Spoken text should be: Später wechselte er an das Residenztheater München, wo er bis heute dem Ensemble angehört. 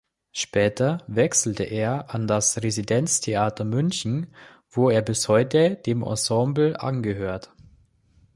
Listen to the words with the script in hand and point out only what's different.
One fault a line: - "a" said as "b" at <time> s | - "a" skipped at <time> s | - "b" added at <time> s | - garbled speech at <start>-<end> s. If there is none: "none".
none